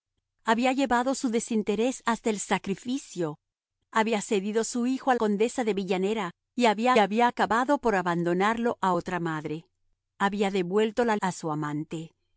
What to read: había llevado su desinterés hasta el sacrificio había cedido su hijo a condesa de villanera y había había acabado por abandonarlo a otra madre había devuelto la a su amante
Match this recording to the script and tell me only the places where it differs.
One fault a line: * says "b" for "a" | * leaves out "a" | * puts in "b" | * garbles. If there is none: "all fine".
all fine